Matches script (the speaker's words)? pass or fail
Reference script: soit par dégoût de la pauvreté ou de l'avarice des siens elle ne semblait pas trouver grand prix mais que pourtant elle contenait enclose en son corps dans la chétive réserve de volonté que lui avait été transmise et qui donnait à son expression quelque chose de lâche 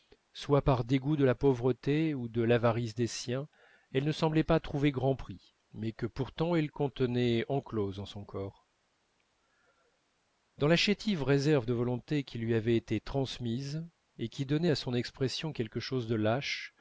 fail